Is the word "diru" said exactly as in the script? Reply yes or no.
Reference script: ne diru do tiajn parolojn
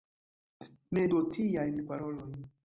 no